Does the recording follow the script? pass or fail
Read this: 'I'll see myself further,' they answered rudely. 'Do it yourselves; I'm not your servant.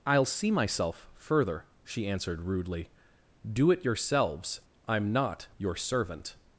fail